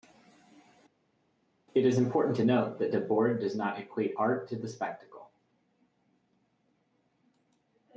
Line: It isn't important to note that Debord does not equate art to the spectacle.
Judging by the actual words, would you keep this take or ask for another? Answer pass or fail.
fail